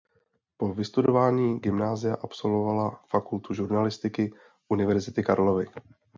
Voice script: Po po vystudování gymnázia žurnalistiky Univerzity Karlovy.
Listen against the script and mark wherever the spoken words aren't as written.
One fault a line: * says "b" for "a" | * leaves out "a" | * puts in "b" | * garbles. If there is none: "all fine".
* leaves out "po"
* puts in "absolvovala fakultu"